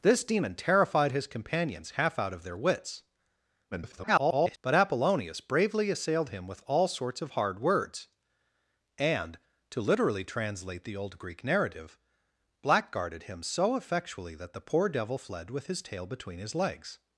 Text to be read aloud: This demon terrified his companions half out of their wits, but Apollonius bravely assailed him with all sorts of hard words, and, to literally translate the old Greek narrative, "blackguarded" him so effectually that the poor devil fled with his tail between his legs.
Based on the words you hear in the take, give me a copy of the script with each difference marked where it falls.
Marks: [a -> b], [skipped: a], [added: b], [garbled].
This demon terrified his companions half out of their wits, [garbled] but Apollonius bravely assailed him with all sorts of hard words, and, to literally translate the old Greek narrative, "blackguarded" him so effectually that the poor devil fled with his tail between his legs.